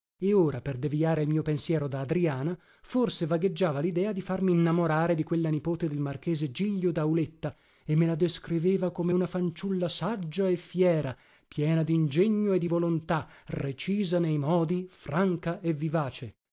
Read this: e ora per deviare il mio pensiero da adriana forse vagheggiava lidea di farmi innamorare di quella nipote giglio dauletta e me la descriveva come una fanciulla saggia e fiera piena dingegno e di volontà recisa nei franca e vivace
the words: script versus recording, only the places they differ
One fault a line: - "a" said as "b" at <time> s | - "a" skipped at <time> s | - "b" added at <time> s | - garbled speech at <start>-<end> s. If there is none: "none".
- "del marchese" added at 5.9 s
- "modi" added at 14.4 s